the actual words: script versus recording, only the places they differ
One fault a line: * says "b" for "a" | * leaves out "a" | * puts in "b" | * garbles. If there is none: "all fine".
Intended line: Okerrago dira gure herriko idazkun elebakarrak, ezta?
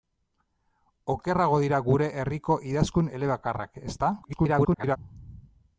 * garbles